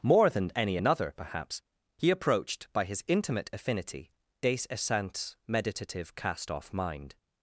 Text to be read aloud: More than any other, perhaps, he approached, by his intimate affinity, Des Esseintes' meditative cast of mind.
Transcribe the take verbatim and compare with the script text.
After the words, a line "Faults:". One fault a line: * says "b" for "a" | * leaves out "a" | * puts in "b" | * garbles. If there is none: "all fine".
More than any another, perhaps, he approached, by his intimate affinity, Des Esseintes' meditative cast off mind.
Faults:
* says "another" for "other"
* says "off" for "of"